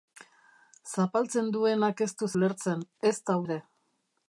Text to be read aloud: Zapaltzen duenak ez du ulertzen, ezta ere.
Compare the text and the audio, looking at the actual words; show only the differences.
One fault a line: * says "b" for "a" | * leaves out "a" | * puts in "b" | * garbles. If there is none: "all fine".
all fine